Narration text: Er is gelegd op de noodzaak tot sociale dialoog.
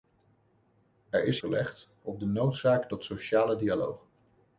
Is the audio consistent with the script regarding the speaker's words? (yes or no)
yes